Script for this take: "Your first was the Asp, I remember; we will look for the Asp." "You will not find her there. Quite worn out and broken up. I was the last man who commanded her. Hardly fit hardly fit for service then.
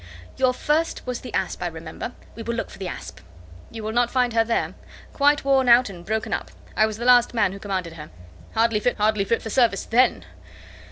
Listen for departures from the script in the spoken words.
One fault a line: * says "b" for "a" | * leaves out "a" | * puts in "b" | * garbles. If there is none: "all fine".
all fine